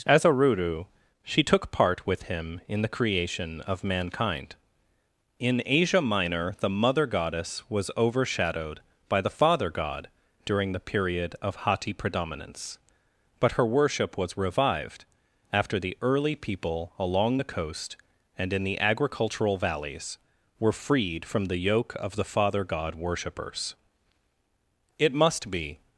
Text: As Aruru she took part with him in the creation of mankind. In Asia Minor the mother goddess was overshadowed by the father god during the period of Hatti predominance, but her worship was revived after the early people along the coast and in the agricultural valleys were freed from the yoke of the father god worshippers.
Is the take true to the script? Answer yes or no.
no